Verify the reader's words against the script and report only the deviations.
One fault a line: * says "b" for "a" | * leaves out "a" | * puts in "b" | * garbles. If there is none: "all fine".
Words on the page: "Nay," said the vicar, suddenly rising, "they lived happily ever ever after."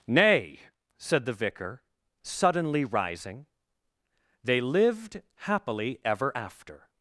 * leaves out "ever"